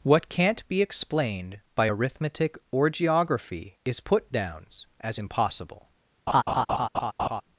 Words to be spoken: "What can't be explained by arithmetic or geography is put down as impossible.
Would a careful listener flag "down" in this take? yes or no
yes